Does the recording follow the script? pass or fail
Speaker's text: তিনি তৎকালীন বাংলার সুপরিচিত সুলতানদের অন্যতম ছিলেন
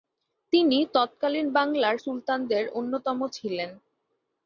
fail